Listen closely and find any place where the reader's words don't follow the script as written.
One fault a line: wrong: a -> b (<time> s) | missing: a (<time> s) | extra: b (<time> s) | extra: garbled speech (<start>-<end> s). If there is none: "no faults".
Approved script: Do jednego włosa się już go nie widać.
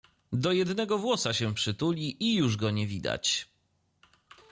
extra: przytuli i (1.5 s)